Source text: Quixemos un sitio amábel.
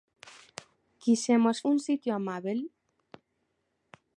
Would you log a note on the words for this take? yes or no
no